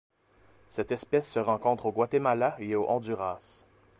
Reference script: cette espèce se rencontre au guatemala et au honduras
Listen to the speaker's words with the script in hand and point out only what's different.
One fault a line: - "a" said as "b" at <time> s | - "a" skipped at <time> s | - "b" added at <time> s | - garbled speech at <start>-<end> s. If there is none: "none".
none